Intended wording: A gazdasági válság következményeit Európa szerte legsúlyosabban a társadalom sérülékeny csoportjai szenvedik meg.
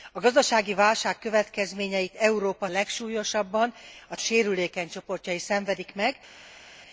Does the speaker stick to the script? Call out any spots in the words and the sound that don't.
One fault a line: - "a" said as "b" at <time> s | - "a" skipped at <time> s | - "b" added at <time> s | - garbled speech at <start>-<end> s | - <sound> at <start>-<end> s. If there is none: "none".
- "szerte" skipped at 2.7 s
- "társadalom" skipped at 4.2 s